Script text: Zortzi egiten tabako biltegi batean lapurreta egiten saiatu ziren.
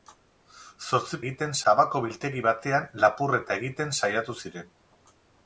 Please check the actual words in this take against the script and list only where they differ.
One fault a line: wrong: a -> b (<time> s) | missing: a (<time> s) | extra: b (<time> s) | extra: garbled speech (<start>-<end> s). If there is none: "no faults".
no faults